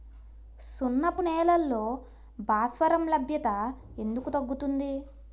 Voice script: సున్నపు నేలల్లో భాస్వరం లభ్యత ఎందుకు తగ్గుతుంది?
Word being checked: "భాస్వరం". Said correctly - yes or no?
yes